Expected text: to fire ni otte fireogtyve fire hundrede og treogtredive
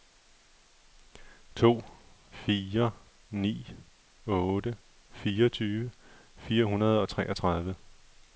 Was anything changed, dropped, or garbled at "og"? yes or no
no